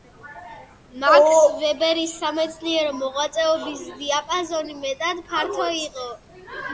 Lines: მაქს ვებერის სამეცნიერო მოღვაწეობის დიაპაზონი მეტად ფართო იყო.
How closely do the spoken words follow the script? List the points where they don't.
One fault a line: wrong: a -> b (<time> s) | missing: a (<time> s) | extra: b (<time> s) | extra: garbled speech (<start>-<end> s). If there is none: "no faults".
no faults